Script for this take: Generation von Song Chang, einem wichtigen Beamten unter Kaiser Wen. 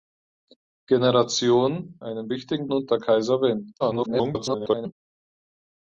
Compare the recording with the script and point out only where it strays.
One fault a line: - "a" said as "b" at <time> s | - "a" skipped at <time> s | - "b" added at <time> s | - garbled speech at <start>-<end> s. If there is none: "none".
- "von Song Chang" skipped at 2.0 s
- "Beamten" skipped at 2.7 s
- garbled speech at 3.8-4.9 s